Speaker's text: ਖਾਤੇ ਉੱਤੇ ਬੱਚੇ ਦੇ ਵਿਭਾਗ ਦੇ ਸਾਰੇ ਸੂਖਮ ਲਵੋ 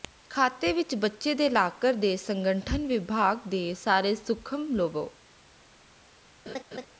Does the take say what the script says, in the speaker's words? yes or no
no